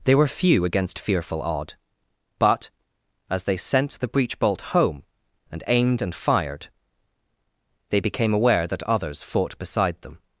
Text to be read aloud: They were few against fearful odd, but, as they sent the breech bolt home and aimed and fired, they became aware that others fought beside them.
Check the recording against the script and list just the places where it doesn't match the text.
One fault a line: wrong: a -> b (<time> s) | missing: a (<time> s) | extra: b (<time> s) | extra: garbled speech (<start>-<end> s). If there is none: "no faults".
no faults